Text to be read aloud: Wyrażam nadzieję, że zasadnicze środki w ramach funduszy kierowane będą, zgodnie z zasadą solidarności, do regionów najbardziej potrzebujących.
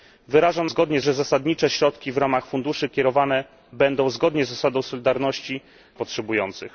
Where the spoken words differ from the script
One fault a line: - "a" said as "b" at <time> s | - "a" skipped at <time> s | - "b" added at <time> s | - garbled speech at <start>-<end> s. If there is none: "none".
- "nadzieję" said as "zgodnie" at 0.6 s
- "do regionów najbardziej" skipped at 5.6 s